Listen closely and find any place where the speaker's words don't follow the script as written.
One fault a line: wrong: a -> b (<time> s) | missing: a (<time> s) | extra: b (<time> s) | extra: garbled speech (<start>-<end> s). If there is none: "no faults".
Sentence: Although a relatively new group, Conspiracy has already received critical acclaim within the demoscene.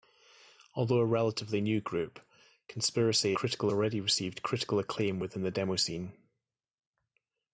wrong: has -> critical (3.3 s)